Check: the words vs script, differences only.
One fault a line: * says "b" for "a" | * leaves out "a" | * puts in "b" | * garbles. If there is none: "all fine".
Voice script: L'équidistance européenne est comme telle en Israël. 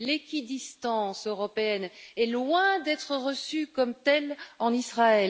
* puts in "loin d'être reçue"